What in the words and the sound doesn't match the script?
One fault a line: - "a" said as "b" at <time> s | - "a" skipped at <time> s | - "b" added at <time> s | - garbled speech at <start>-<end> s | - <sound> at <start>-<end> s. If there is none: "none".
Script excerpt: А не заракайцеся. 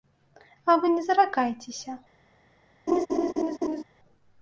- "вы" added at 0.8 s
- laugh at 2.9-3.8 s